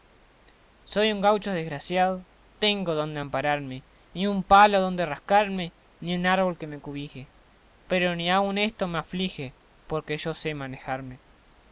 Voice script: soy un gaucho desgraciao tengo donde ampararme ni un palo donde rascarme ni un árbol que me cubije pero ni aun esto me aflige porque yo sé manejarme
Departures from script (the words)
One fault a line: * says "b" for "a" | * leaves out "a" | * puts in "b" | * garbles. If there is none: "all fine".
all fine